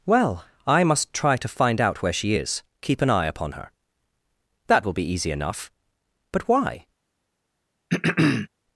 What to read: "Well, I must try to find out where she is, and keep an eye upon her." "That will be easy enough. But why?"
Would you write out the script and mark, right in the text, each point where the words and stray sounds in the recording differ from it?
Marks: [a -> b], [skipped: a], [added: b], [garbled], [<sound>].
"Well, I must try to find out where she is, [skipped: and] keep an eye upon her." "That will be easy enough. But why?" [throat clearing]